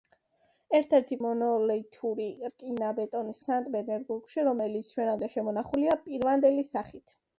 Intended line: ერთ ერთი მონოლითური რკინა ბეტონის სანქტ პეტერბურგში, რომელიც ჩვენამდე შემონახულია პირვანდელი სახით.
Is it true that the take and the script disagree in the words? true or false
false